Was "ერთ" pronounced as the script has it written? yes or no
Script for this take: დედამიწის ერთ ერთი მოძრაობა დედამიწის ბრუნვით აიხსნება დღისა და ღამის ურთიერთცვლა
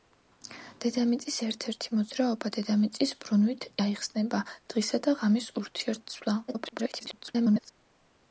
yes